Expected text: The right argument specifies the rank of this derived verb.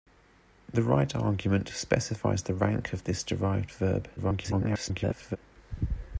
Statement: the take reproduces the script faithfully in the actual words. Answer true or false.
false